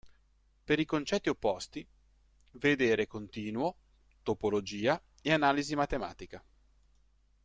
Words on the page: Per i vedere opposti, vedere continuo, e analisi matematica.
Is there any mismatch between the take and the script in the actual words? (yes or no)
yes